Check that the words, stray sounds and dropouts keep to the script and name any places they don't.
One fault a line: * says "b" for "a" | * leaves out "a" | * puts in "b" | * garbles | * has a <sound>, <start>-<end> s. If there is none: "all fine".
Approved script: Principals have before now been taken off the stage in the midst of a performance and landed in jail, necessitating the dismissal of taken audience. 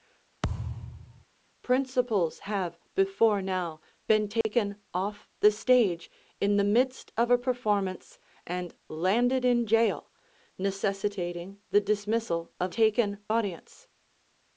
* has a thud, 0.4-1.2 s
* has a dropout, 4.4-4.4 s